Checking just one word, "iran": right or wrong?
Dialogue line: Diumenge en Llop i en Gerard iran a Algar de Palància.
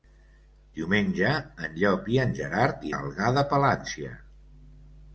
wrong